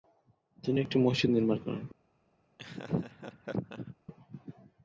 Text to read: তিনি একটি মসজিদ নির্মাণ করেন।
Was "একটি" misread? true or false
false